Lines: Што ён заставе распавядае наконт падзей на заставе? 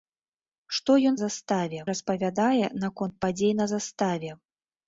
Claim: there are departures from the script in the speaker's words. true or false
false